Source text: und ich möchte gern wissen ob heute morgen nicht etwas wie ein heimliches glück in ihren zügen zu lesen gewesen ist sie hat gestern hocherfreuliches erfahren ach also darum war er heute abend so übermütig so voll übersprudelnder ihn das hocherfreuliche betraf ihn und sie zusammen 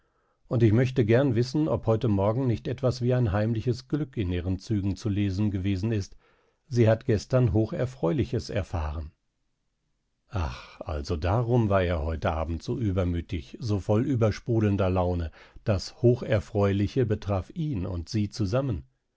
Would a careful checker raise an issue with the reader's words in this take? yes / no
yes